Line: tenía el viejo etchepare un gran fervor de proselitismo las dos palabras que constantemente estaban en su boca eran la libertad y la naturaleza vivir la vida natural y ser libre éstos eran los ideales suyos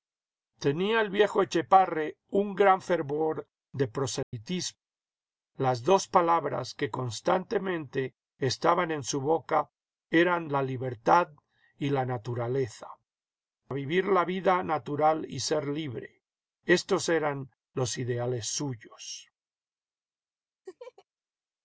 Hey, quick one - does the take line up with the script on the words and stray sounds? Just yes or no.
no